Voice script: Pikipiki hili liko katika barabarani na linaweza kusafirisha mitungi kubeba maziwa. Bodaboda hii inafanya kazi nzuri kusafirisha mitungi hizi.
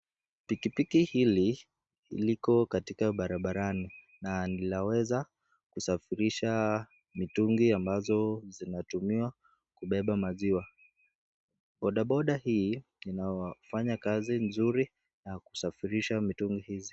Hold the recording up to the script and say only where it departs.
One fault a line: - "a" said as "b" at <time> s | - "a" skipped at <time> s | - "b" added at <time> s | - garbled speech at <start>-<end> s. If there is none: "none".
- "ambazo zinatumiwa" added at 7.7 s
- "ya" added at 15.3 s